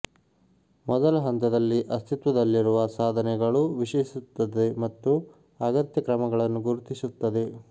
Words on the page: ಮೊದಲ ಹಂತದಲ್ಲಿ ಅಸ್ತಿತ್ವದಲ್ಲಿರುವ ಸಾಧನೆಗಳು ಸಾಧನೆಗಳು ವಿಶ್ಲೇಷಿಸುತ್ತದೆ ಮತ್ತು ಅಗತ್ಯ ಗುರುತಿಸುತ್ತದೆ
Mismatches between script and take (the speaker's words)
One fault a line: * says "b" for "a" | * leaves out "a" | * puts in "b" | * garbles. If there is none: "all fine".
* leaves out "ಸಾಧನೆಗಳು"
* puts in "ಕ್ರಮಗಳನ್ನು"